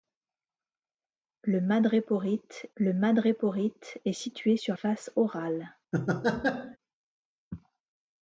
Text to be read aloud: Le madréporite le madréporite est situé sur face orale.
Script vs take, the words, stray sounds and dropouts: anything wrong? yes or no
yes